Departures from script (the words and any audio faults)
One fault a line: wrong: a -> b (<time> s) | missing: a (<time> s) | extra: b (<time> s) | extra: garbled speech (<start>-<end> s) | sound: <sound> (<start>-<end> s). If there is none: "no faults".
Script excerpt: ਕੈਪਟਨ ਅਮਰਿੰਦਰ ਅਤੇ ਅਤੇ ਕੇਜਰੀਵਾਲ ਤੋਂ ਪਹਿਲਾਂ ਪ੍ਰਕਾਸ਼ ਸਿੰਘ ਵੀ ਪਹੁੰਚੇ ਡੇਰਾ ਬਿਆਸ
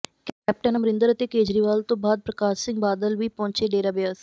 missing: ਅਤੇ (1.3 s)
wrong: ਪਹਿਲਾਂ -> ਬਾਅਦ (2.0 s)
extra: ਬਾਦਲ (2.8 s)